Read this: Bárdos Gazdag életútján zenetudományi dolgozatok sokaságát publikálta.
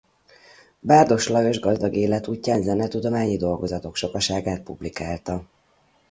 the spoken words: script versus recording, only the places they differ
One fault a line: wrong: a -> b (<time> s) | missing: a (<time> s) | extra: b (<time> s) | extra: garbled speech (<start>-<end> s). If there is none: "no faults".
extra: Lajos (1.3 s)